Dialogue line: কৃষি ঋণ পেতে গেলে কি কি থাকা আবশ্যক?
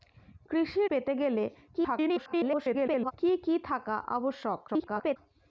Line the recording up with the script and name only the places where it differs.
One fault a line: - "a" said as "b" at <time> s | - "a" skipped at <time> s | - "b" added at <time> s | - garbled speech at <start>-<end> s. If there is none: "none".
- "ঋণ" skipped at 0.8 s
- garbled speech at 1.7-3.1 s
- garbled speech at 4.7-5.2 s